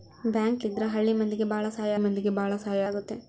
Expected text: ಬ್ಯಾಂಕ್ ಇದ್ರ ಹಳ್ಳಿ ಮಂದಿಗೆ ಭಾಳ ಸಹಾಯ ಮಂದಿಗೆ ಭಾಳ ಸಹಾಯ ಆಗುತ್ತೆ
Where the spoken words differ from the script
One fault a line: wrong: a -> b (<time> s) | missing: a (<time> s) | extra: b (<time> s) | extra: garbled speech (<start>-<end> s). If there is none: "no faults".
no faults